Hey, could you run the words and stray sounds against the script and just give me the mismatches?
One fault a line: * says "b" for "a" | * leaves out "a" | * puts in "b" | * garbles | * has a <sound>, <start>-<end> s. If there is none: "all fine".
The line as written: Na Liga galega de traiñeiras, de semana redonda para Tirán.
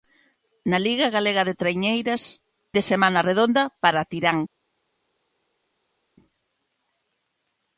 all fine